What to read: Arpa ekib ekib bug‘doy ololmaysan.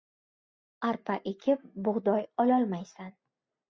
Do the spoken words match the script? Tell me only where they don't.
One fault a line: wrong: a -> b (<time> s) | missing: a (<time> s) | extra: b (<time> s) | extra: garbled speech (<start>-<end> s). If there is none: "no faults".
missing: ekib (1.7 s)